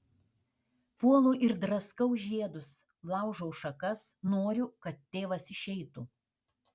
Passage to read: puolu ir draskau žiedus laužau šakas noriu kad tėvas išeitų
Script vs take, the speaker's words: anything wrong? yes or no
no